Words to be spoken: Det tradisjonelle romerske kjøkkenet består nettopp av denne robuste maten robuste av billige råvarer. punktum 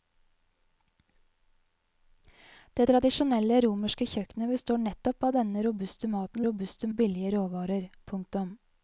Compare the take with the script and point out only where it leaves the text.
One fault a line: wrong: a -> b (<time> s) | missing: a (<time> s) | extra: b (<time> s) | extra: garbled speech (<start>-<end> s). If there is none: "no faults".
no faults